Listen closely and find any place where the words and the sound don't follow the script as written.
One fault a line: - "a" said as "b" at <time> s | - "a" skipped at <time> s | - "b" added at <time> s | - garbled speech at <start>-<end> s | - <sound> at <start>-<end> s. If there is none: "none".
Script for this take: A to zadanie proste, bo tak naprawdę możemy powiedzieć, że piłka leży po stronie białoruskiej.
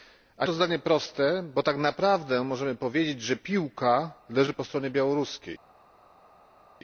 none